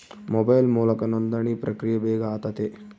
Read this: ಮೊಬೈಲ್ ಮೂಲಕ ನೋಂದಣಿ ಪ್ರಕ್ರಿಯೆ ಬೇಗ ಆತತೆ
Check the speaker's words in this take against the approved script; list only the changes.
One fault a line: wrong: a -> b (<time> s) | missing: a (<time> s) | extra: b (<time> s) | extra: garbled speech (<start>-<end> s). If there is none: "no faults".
no faults